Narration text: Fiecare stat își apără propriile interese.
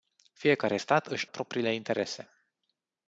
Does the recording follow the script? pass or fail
fail